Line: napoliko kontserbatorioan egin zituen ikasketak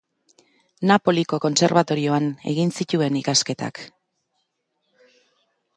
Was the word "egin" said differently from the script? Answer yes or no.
no